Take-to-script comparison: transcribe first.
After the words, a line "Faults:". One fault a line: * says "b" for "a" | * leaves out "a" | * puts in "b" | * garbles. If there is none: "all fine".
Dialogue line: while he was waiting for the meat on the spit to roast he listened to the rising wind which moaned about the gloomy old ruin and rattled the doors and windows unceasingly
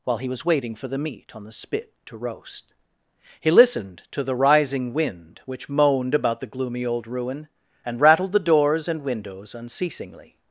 while he was waiting for the meat on the spit to roast he listened to the rising wind which moaned about the gloomy old ruin and rattled the doors and windows unceasingly
Faults:
all fine